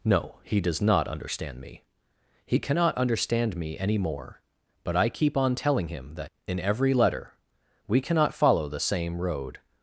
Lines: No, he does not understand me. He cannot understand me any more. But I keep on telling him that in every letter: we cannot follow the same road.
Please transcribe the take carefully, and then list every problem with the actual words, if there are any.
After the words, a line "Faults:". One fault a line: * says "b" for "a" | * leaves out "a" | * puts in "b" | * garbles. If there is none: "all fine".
No, he does not understand me. He cannot understand me any more. But I keep on telling him that in every letter: we cannot follow the same road.
Faults:
all fine